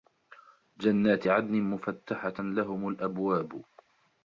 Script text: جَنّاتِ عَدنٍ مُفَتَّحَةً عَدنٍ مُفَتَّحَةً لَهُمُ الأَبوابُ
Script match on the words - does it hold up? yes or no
no